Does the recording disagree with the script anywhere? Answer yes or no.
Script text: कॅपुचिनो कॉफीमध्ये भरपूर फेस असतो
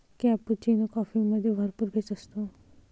no